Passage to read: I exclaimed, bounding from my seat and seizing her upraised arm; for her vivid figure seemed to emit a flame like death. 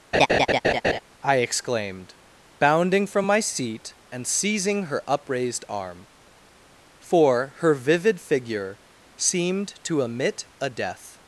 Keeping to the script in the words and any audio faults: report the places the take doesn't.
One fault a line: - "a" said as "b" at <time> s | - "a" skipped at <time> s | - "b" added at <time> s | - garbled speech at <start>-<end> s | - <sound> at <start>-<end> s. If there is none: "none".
- laugh at 0.1-1.0 s
- "flame like" skipped at 10.7 s